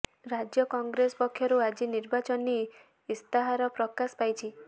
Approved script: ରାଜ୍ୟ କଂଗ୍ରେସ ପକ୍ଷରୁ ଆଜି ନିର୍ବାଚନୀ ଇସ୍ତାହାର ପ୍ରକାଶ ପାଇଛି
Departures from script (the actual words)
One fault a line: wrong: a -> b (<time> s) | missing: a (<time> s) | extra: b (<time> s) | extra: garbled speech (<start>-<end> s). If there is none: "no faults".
no faults